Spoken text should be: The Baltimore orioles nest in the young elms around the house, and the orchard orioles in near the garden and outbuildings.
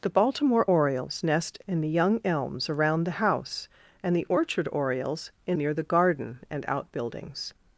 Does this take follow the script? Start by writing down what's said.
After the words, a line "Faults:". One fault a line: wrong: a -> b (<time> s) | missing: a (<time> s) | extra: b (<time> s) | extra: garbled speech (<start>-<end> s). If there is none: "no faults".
The Baltimore orioles nest in the young elms around the house, and the orchard orioles in near the garden and outbuildings.
Faults:
no faults